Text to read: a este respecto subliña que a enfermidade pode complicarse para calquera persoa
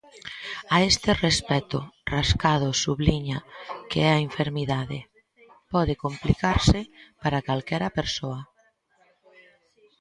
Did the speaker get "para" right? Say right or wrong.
right